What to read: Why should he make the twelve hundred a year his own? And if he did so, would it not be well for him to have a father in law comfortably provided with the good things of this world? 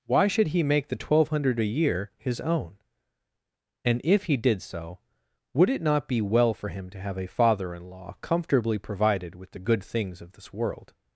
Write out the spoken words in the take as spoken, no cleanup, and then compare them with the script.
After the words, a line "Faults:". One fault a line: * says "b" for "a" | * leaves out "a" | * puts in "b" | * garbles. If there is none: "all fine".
Why should he make the twelve hundred a year his own? And if he did so, would it not be well for him to have a father in law comfortably provided with the good things of this world?
Faults:
all fine